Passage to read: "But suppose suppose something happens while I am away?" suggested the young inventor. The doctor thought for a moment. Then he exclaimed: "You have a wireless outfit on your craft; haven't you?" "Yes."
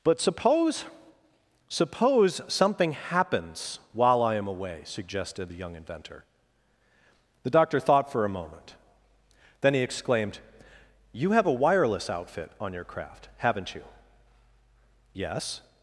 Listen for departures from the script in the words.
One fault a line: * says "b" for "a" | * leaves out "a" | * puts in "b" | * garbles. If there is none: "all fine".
all fine